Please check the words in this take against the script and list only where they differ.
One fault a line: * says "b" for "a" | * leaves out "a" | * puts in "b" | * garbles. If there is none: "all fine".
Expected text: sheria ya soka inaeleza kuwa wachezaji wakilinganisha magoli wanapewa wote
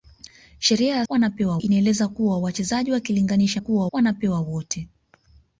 * says "wanapewa" for "soka"
* says "kuwa" for "magoli"